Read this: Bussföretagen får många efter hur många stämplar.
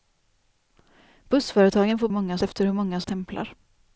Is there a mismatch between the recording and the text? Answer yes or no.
no